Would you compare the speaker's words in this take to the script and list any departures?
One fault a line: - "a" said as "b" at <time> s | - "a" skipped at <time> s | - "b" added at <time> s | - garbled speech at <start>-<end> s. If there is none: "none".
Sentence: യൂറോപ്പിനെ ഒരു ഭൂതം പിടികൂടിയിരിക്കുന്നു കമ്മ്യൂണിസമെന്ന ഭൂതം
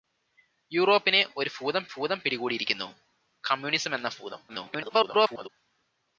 - "ഭൂതം" added at 1.9 s
- garbled speech at 4.5-5.5 s